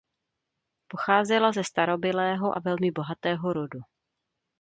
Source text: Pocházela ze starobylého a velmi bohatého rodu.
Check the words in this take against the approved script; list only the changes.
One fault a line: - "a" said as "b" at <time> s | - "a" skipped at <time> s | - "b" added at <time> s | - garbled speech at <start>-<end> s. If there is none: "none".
none